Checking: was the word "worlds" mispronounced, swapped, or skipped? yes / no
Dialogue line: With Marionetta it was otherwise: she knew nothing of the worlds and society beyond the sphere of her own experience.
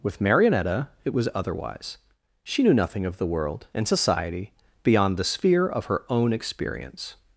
yes